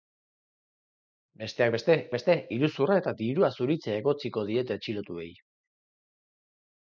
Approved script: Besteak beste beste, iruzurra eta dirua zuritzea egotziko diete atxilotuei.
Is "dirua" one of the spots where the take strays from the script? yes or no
no